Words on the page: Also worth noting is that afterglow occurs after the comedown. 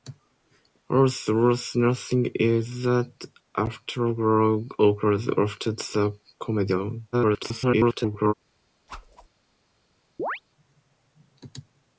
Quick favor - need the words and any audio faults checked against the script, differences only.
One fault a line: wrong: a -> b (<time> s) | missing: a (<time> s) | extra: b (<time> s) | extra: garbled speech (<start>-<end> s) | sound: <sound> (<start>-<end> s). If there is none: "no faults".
extra: garbled speech (7.1-8.3 s)
sound: whoosh (8.9-9.3 s)
sound: chirp (10.2-10.4 s)